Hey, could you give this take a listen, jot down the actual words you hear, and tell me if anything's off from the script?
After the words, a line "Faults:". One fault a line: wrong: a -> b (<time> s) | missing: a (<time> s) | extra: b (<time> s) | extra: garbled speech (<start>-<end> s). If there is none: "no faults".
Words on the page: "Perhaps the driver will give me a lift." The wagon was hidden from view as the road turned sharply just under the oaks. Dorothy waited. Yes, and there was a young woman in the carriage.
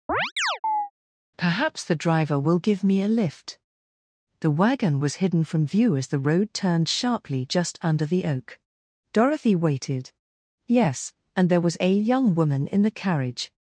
"Perhaps the driver will give me a lift." The wagon was hidden from view as the road turned sharply just under the oak. Dorothy waited. Yes, and there was a young woman in the carriage.
Faults:
wrong: oaks -> oak (8.3 s)